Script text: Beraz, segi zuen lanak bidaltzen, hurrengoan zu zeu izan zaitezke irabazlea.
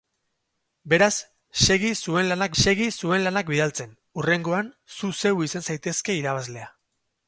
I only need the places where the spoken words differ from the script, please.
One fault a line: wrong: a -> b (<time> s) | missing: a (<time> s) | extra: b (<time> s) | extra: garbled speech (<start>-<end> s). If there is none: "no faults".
extra: segi zuen lanak (2.6 s)